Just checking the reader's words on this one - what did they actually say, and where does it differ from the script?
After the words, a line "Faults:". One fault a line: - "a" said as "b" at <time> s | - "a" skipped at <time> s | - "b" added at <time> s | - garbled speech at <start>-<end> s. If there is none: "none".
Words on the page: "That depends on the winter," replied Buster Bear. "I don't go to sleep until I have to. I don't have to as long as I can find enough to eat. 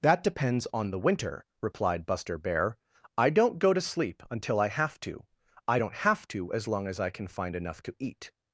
"That depends on the winter," replied Buster Bear. "I don't go to sleep until I have to. I don't have to as long as I can find enough to eat.
Faults:
none